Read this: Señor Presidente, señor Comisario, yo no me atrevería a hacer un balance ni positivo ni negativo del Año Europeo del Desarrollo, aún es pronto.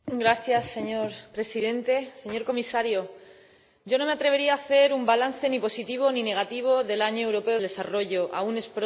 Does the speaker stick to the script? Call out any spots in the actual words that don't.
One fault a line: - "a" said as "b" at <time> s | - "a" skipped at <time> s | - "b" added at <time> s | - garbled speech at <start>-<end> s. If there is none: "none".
- "del" skipped at 7.6 s